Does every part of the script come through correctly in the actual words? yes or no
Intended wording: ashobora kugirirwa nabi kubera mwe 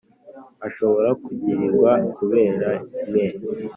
no